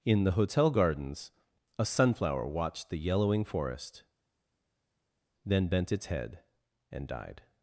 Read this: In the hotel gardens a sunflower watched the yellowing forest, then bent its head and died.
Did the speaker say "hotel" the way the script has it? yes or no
yes